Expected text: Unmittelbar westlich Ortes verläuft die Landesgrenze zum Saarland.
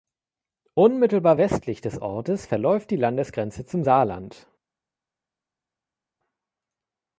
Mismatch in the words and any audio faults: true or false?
true